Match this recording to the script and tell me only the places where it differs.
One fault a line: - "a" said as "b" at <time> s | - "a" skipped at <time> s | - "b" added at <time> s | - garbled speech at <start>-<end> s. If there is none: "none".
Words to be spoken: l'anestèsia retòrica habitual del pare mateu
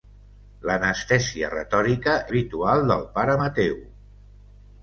none